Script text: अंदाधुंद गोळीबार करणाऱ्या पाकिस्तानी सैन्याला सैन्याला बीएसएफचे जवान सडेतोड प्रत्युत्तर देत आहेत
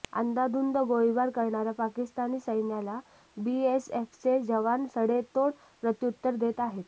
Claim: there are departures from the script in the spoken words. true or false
true